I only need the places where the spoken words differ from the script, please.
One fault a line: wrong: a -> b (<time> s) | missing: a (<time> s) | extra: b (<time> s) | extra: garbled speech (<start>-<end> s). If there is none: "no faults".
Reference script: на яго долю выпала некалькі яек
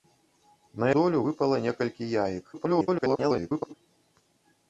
missing: яго (0.9 s)
extra: garbled speech (2.5-3.7 s)